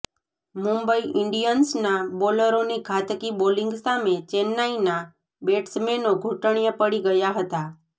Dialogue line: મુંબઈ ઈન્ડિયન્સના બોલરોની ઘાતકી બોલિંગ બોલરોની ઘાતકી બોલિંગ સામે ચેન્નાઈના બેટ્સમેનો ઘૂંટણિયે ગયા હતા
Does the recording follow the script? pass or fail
fail